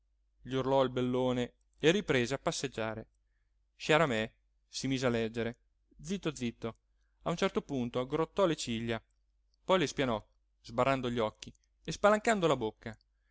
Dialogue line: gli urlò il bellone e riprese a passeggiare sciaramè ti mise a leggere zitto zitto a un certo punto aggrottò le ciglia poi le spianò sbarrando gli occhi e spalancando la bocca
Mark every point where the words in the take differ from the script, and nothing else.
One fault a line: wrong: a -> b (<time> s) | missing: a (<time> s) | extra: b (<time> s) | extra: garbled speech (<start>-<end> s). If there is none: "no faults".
wrong: ti -> si (4.7 s)